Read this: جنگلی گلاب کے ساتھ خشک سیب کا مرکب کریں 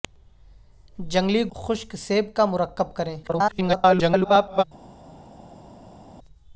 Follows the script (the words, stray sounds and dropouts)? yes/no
no